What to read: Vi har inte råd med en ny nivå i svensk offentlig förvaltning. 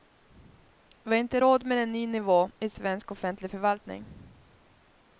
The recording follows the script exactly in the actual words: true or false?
true